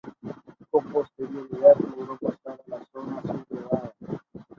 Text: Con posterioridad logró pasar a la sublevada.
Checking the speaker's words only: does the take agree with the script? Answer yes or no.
no